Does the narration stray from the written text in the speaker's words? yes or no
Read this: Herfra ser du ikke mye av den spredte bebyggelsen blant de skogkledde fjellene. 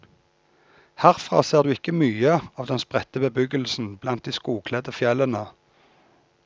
no